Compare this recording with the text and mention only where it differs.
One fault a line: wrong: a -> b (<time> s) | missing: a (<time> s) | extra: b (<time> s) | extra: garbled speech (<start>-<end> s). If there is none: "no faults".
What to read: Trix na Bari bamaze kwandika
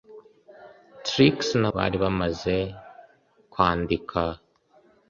no faults